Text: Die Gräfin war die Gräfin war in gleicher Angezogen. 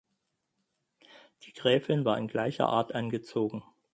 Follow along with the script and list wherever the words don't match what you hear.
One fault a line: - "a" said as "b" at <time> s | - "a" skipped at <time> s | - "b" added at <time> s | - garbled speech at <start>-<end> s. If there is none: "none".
- "die Gräfin war" skipped at 2.2 s
- "Art" added at 2.7 s